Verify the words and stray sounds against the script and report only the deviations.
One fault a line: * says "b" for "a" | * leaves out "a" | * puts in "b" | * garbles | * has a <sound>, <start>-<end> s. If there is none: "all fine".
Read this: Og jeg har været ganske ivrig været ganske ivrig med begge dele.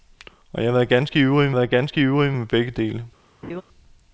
* has a laugh, 3.4-3.6 s